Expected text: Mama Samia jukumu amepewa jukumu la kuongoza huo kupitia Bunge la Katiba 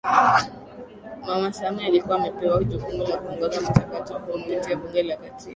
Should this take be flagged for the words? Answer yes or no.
yes